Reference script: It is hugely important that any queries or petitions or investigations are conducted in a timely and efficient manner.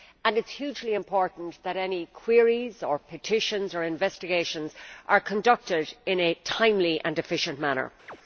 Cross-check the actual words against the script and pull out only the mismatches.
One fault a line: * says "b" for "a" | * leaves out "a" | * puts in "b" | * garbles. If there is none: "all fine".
all fine